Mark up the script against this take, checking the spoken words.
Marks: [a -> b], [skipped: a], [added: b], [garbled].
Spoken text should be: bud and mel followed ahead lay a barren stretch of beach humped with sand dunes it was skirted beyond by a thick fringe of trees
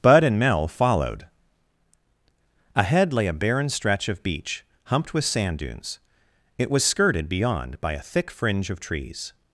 bud and mel followed ahead lay a barren stretch of beach humped with sand dunes it was skirted beyond by a thick fringe of trees